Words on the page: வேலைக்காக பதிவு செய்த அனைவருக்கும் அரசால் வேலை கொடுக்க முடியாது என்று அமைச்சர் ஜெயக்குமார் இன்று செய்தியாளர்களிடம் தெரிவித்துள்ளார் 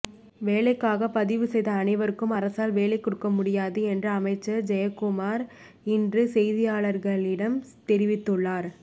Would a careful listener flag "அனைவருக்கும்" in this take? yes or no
no